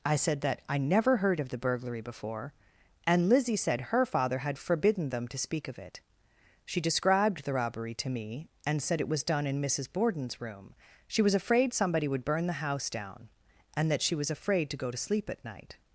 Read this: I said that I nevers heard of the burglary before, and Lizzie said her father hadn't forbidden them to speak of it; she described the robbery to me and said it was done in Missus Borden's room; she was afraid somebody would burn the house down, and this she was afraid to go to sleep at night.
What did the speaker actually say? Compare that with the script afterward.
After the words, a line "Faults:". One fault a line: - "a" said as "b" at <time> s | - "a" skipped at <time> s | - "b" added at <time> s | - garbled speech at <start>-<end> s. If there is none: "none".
I said that I never heard of the burglary before, and Lizzie said her father had forbidden them to speak of it; she described the robbery to me and said it was done in Missus Borden's room; she was afraid somebody would burn the house down, and that she was afraid to go to sleep at night.
Faults:
- "nevers" said as "never" at 0.8 s
- "hadn't" said as "had" at 4.4 s
- "this" said as "that" at 13.9 s